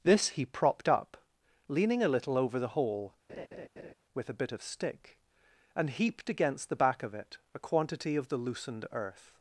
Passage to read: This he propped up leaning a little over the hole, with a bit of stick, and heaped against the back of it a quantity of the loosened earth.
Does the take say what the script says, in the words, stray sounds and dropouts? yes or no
no